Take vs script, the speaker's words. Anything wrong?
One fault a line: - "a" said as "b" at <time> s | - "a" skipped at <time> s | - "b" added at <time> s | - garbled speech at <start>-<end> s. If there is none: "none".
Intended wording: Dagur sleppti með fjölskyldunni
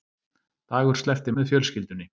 none